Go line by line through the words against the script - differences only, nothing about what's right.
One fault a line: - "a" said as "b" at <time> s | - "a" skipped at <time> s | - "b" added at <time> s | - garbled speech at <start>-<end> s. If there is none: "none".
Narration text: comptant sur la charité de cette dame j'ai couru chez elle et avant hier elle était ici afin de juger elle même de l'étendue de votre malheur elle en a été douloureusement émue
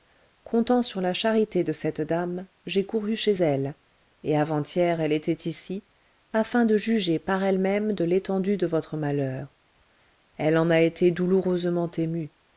- "par" added at 7.2 s